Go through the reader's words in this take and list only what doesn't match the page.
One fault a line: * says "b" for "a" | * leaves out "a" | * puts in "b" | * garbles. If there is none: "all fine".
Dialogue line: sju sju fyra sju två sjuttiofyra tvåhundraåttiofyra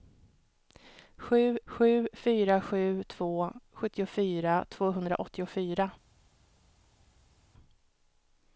all fine